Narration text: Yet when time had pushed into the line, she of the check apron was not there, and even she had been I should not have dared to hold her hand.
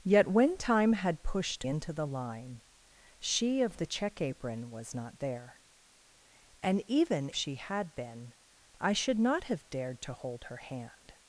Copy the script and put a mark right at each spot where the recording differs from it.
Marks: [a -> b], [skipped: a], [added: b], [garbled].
Yet when time had pushed into the line, she of the check apron was not there, and even she had been I should not have dared to hold her hand.